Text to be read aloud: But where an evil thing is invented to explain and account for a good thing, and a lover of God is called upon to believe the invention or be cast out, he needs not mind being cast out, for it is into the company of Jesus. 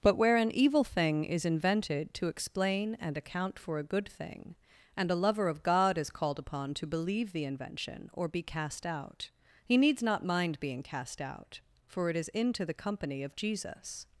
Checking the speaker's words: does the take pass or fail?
pass